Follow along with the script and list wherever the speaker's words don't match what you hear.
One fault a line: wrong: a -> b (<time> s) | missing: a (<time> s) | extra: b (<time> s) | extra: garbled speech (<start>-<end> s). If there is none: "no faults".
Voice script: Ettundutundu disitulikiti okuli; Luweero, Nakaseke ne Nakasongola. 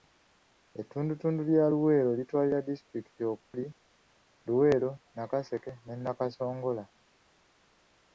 extra: lya Luweero litwalira (1.5 s)